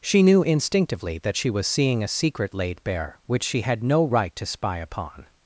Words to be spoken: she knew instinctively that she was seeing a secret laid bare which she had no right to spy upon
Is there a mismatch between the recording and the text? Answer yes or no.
no